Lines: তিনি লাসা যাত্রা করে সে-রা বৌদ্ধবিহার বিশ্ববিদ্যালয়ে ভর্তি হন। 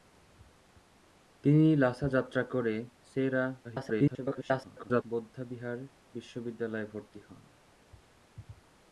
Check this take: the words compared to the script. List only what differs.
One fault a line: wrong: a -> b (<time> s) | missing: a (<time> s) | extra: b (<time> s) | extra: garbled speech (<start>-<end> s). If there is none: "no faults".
extra: garbled speech (3.6-5.0 s)